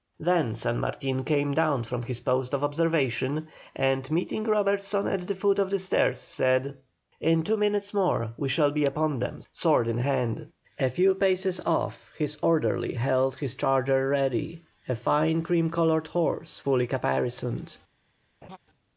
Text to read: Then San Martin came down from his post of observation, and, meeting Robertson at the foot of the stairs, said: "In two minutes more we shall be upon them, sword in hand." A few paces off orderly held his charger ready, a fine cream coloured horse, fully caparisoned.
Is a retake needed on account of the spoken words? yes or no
yes